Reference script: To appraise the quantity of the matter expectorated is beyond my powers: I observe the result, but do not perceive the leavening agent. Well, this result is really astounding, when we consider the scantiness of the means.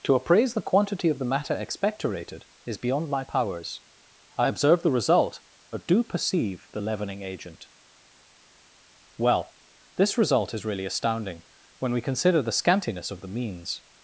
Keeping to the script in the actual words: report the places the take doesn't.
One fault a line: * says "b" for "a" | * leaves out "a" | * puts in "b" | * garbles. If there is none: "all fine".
* leaves out "not"